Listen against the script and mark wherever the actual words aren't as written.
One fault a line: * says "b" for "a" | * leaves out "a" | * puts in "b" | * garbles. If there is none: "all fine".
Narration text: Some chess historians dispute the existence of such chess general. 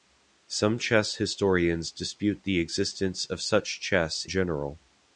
all fine